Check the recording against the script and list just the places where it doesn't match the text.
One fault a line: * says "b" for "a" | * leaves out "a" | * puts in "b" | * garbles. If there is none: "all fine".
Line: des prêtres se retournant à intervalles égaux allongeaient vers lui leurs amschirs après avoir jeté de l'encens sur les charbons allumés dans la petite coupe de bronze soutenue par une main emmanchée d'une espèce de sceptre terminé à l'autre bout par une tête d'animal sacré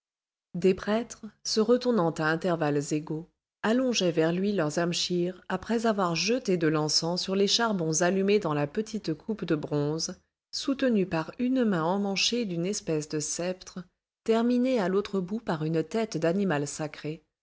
all fine